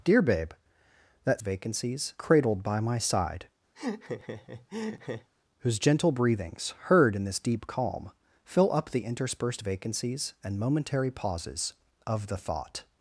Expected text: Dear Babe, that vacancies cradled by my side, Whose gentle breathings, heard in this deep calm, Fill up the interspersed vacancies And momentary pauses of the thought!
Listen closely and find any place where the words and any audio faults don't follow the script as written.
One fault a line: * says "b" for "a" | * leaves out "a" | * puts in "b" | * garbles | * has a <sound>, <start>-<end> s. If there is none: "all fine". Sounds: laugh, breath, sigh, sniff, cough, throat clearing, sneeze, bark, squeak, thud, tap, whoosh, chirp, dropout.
* has a laugh, 3.7-5.3 s